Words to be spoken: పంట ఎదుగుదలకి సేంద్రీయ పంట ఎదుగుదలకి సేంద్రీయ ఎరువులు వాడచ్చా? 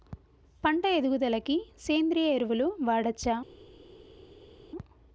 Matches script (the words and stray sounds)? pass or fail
fail